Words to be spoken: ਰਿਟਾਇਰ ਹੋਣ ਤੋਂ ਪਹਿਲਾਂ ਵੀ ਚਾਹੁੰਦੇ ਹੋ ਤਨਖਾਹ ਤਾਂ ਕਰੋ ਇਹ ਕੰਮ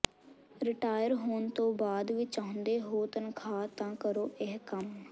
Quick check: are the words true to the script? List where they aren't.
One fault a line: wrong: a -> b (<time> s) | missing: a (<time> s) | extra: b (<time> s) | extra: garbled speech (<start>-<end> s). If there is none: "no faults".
wrong: ਪਹਿਲਾਂ -> ਬਾਅਦ (1.7 s)